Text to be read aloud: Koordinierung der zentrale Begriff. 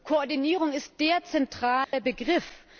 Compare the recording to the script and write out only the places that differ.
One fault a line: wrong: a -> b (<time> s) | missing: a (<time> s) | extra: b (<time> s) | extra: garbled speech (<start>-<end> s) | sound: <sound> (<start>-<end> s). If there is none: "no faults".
extra: ist (0.7 s)
sound: dropout (1.8-1.9 s)